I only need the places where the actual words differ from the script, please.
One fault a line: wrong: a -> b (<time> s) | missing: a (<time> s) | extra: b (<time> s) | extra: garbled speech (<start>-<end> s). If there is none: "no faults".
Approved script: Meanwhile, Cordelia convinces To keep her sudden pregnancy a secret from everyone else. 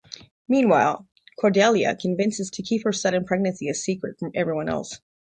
no faults